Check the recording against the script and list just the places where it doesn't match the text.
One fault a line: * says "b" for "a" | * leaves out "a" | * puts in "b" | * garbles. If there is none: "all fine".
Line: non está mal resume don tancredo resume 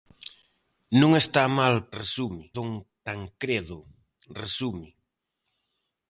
all fine